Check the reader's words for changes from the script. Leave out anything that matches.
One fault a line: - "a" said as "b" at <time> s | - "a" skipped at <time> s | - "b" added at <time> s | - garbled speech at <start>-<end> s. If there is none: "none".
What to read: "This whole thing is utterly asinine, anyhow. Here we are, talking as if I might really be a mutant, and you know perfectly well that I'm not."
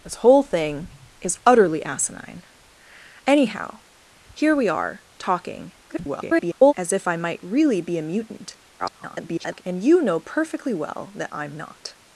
- garbled speech at 5.9-6.7 s
- garbled speech at 8.8-9.6 s